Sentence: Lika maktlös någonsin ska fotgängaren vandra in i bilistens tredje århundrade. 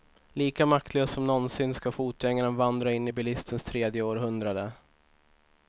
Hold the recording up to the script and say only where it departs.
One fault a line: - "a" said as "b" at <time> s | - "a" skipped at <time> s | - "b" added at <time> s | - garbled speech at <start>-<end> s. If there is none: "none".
- "som" added at 1.1 s